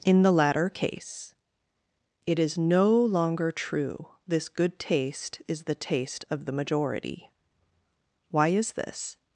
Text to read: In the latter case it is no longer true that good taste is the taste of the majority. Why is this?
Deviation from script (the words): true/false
true